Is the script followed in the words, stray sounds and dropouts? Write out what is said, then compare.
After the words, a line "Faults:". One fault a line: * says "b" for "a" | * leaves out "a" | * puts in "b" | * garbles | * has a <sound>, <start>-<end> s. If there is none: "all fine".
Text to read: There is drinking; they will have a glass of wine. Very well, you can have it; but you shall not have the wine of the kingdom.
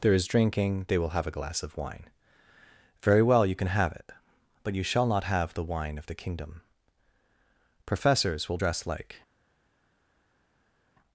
There is drinking; they will have a glass of wine. Very well, you can have it; but you shall not have the wine of the kingdom. Professors will dress like
Faults:
* puts in "Professors will dress like"